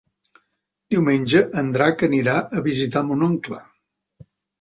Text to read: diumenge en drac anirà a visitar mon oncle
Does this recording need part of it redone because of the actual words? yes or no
no